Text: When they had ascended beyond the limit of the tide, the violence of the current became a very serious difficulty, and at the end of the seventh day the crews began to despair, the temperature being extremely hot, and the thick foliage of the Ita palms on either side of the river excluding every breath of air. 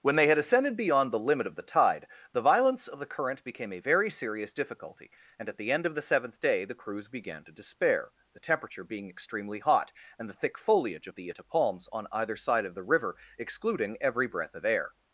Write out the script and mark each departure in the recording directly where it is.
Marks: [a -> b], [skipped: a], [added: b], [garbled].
When they had ascended beyond the limit of the tide, the violence of the current became a very serious difficulty, and at the end of the seventh day the crews began to despair, the temperature being extremely hot, and the thick foliage of the Ita palms on either side of the river excluding every breath of air.